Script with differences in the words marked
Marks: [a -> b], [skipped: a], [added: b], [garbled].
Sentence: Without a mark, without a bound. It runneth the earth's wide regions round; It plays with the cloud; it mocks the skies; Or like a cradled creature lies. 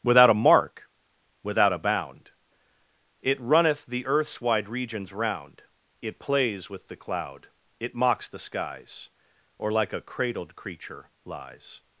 Without a mark, without a bound. It runneth the earth's wide regions round; It plays with the cloud; it mocks the skies; Or like a cradled creature lies.